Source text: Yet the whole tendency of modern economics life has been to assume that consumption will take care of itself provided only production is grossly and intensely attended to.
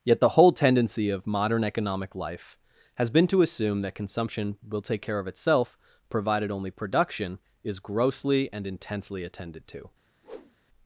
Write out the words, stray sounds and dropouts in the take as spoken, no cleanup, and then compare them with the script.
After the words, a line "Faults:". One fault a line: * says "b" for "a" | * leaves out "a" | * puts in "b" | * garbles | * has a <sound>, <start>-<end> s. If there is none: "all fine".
Yet the whole tendency of modern economic life has been to assume that consumption will take care of itself provided only production is grossly and intensely attended to.
Faults:
* says "economic" for "economics"
* has a whoosh, 10.2-10.6 s